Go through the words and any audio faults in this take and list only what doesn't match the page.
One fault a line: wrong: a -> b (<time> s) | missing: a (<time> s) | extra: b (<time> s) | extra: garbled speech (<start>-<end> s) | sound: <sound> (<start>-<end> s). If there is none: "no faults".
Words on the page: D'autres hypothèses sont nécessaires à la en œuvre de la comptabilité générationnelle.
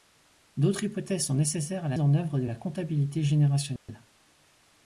sound: dropout (3.8-3.9 s)